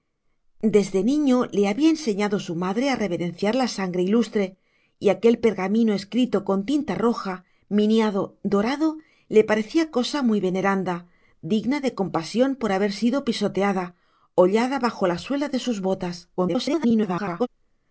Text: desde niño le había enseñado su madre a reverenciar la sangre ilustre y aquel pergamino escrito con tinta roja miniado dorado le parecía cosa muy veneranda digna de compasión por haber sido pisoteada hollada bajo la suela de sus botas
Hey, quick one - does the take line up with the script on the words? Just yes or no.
no